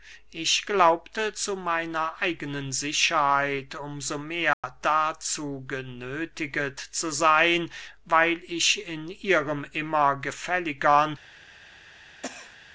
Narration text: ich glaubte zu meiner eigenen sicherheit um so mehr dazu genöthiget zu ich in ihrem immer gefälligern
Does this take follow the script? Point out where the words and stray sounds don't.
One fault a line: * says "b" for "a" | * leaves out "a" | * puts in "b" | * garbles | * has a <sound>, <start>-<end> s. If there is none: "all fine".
* has a dropout, 4.5-4.6 s
* puts in "seyn weil"
* has a cough, 12.2-12.6 s